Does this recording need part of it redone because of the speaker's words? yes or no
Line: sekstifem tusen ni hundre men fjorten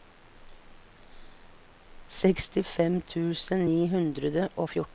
yes